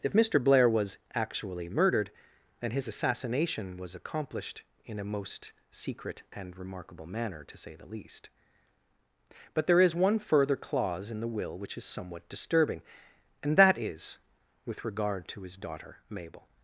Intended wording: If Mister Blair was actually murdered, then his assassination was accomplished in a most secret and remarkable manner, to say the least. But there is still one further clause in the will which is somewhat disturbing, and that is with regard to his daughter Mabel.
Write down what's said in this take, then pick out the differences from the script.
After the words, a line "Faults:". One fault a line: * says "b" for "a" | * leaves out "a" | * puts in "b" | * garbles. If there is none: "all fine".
If Mister Blair was actually murdered, then his assassination was accomplished in a most secret and remarkable manner, to say the least. But there is one further clause in the will which is somewhat disturbing, and that is with regard to his daughter Mabel.
Faults:
* leaves out "still"